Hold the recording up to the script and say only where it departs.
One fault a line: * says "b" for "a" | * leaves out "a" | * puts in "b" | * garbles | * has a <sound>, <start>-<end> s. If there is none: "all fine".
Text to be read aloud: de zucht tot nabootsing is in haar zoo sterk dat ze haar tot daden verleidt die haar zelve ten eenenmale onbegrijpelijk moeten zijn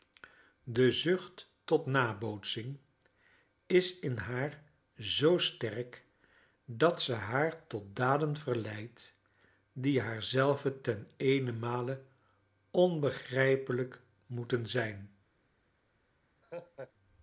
* has a laugh, 16.4-16.9 s